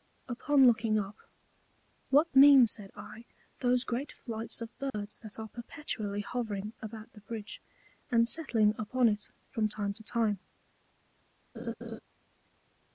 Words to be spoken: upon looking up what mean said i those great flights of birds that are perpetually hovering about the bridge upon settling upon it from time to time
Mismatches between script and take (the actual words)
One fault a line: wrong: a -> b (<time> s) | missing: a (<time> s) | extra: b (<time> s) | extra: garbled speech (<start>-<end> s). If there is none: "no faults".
wrong: upon -> and (8.1 s)